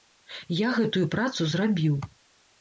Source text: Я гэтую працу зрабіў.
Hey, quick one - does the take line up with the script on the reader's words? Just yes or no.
yes